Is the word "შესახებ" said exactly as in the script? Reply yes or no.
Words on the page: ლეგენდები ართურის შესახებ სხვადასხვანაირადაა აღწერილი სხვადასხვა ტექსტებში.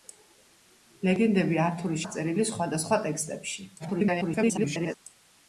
no